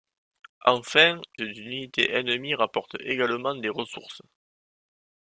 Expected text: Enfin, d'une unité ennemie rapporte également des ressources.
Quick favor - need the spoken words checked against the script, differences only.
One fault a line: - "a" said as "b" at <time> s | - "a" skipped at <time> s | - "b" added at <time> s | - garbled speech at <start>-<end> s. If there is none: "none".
none